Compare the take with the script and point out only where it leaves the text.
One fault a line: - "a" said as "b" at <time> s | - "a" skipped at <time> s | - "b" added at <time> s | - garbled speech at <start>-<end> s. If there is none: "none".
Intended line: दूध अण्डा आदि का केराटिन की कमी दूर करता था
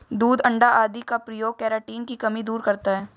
- "प्रयोग" added at 1.2 s
- "था" said as "है" at 3.0 s